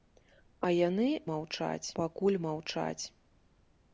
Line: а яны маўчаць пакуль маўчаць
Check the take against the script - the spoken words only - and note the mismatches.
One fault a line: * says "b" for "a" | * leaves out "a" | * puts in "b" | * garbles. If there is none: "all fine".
all fine